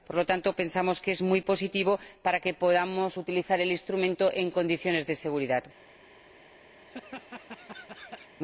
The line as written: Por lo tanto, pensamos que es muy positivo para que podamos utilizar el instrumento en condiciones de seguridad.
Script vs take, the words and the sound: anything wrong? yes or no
yes